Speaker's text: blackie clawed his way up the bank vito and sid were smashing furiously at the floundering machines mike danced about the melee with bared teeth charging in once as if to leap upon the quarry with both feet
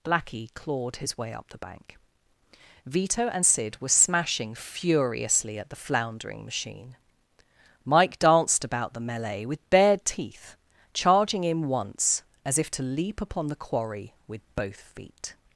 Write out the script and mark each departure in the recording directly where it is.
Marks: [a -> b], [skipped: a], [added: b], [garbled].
blackie clawed his way up the bank vito and sid were smashing furiously at the floundering [machines -> machine] mike danced about the melee with bared teeth charging in once as if to leap upon the quarry with both feet